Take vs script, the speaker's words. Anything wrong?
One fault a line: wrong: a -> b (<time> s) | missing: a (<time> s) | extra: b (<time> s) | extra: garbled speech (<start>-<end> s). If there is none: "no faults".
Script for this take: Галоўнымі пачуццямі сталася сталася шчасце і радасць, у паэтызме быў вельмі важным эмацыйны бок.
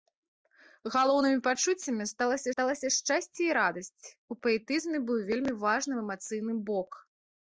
no faults